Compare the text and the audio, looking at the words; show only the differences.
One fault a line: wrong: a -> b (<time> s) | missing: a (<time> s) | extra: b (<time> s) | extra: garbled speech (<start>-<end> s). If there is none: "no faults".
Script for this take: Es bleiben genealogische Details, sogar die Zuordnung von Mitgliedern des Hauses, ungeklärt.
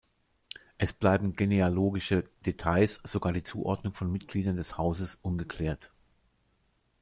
no faults